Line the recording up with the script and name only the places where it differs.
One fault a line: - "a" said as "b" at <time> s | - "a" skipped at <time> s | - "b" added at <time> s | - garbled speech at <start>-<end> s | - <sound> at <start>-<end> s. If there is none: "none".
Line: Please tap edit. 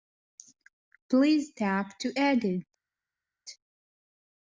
- "to" added at 2.0 s